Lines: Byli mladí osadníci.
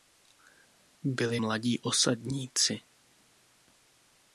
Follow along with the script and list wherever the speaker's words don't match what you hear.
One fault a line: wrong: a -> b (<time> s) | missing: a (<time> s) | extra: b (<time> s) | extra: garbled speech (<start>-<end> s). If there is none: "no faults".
no faults